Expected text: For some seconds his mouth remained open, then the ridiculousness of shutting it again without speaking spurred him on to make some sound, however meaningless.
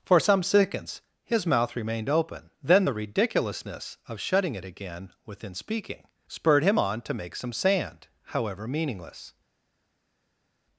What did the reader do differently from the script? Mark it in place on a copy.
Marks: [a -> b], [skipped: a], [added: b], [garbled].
For some seconds his mouth remained open, then the ridiculousness of shutting it again [without -> within] speaking spurred him on to make some [sound, -> sand] however meaningless.